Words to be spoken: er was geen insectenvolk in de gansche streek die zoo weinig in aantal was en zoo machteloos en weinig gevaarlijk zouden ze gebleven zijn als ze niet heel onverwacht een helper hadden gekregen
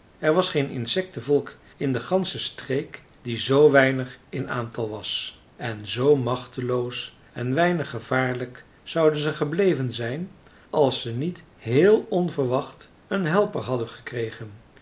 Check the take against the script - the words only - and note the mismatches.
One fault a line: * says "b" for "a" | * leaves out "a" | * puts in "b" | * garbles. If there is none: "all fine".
all fine